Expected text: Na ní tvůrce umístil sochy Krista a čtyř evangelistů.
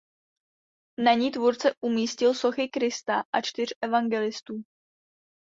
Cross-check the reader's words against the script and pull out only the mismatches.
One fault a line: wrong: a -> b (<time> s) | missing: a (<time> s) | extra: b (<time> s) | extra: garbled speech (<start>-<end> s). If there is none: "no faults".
no faults